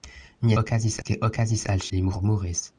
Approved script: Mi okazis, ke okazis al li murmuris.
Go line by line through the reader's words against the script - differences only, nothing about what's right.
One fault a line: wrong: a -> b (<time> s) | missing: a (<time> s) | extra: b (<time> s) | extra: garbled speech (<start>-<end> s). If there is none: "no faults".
no faults